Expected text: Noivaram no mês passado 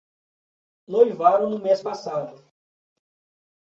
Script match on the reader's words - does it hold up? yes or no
yes